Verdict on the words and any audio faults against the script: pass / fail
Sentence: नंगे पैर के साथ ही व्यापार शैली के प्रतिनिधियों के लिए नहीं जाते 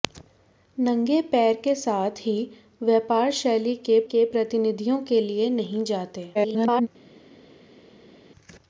fail